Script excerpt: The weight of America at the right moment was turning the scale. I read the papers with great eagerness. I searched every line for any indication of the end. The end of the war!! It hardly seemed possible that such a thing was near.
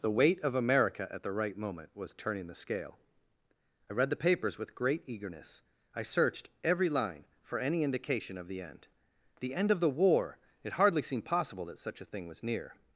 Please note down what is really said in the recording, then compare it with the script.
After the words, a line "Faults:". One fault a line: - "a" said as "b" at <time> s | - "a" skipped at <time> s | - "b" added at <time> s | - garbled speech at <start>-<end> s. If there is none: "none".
The weight of America at the right moment was turning the scale. I read the papers with great eagerness. I searched every line for any indication of the end. The end of the war!! It hardly seemed possible that such a thing was near.
Faults:
none